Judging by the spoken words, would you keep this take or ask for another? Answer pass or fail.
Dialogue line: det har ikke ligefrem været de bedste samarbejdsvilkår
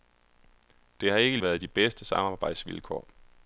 fail